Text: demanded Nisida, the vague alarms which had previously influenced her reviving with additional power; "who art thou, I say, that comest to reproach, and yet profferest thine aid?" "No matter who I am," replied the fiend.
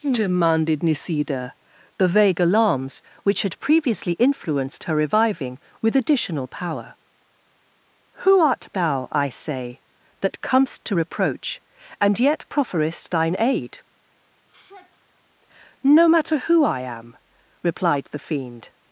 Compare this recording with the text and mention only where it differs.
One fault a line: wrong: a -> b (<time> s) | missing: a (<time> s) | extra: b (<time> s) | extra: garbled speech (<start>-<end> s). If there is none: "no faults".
no faults